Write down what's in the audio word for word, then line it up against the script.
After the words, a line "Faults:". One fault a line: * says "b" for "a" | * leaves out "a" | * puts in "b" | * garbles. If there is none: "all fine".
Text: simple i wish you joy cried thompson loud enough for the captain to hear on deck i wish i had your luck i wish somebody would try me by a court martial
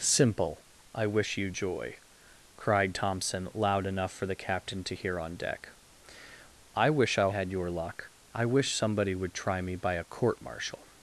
simple i wish you joy cried thompson loud enough for the captain to hear on deck i wish i had your luck i wish somebody would try me by a court martial
Faults:
all fine